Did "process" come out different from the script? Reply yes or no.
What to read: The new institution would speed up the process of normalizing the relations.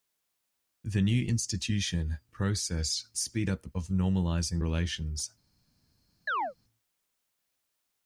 yes